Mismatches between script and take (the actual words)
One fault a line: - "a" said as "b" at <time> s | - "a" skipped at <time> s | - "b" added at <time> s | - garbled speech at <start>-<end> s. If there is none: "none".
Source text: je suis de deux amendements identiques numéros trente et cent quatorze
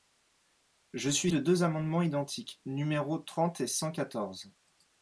none